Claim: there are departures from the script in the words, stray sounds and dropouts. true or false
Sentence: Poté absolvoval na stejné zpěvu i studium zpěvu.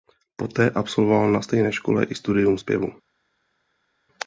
true